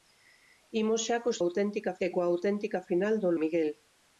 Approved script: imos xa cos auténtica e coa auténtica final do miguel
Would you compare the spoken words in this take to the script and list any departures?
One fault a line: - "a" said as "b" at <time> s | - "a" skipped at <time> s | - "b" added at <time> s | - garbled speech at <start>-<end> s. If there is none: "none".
none